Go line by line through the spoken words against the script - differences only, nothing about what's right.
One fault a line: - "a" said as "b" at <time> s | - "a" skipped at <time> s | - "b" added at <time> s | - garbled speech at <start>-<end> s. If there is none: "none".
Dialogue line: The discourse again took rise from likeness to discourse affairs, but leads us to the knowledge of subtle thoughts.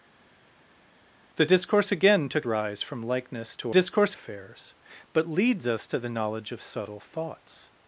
none